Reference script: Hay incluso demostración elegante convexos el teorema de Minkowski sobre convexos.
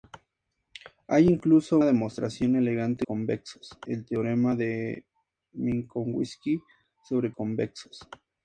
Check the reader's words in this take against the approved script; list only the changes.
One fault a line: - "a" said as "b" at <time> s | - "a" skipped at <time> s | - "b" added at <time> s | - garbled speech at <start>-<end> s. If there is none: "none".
none